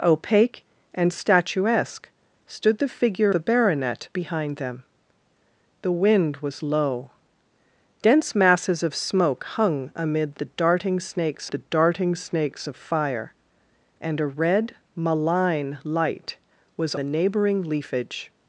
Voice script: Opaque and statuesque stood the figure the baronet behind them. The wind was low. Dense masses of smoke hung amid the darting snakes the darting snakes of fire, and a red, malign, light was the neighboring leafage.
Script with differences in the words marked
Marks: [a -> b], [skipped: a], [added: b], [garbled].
Opaque and statuesque stood the figure the baronet behind them. The wind was low. Dense masses of smoke hung amid the darting snakes the darting snakes of fire, and a red, malign, light was the neighboring leafage.